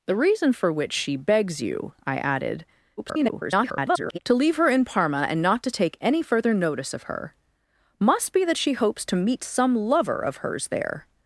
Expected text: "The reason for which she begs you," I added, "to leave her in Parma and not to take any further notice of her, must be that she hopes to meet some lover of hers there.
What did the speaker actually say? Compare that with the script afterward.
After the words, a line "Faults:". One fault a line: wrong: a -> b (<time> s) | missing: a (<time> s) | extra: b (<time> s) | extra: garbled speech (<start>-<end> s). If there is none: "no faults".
"The reason for which she begs you," I added, [garbled] "to leave her in Parma and not to take any further notice of her, must be that she hopes to meet some lover of hers there.
Faults:
extra: garbled speech (3.0-4.2 s)